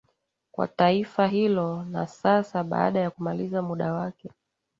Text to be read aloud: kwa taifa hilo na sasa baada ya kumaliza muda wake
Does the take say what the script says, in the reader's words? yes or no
yes